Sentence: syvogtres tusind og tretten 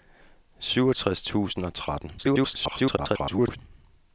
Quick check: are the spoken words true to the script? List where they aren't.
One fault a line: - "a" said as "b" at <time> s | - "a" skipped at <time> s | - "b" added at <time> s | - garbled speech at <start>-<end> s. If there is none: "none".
- garbled speech at 2.2-3.6 s